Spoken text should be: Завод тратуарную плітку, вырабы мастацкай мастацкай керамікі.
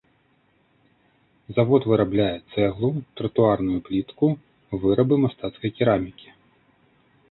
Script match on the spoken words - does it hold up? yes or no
no